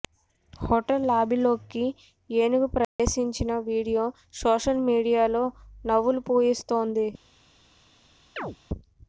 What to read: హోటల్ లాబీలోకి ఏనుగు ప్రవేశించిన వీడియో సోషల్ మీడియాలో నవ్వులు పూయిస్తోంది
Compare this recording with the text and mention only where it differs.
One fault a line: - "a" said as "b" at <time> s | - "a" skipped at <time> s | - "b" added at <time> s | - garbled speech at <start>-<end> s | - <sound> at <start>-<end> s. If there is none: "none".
- dropout at 2.8-3.0 s
- chirp at 8.4-8.6 s